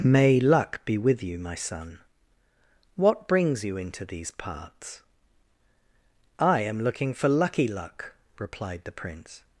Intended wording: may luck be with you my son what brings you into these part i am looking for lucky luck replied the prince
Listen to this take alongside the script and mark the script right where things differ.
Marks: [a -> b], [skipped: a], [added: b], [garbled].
may luck be with you my son what brings you into these [part -> parts] i am looking for lucky luck replied the prince